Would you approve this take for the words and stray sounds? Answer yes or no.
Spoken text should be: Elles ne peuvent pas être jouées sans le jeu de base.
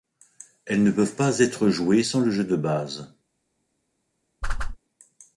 no